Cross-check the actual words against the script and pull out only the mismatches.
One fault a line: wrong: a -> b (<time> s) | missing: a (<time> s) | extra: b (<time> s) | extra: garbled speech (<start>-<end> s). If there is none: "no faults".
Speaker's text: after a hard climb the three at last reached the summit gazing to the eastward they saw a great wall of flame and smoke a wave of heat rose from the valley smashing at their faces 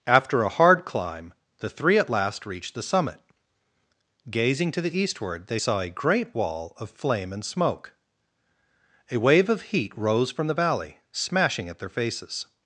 no faults